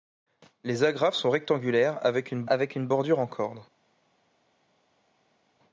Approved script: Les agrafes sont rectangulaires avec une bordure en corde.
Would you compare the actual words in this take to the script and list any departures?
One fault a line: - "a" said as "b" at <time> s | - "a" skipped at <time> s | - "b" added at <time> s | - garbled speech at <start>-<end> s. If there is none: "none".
- "avec une" added at 2.5 s